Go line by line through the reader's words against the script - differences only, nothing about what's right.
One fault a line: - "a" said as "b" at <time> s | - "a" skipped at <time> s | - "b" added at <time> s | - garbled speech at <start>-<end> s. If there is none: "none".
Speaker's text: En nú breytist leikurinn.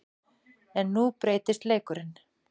none